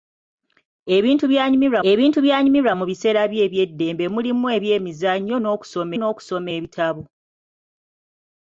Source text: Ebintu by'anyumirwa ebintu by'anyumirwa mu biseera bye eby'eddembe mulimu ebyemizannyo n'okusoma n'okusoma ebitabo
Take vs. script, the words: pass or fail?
pass